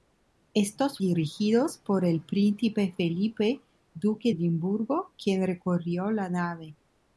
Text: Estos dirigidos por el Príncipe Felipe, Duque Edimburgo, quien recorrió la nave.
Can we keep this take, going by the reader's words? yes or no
yes